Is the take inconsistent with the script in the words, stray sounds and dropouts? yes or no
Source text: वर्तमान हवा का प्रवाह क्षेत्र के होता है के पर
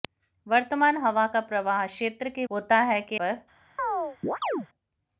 yes